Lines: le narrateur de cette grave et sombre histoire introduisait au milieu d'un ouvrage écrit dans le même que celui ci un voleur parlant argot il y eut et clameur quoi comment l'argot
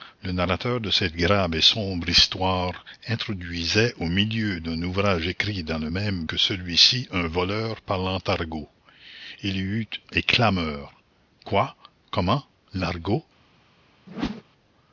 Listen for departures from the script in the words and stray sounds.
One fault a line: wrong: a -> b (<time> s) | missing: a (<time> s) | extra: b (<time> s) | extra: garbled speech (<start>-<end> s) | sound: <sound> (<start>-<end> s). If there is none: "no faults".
sound: whoosh (14.1-14.4 s)